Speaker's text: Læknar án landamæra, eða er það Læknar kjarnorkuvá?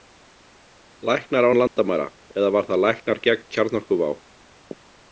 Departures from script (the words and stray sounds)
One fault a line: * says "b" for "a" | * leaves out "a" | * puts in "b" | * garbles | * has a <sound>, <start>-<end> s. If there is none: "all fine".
* has a dropout, 1.7-1.8 s
* says "var" for "er"
* puts in "gegn"